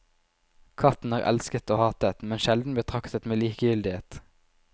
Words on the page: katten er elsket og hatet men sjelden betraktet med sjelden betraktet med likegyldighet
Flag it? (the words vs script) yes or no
yes